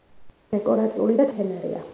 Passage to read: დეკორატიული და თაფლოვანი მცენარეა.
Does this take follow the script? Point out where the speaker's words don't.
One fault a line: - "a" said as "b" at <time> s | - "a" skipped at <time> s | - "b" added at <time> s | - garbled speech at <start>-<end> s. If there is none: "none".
- "თაფლოვანი" skipped at 1.3 s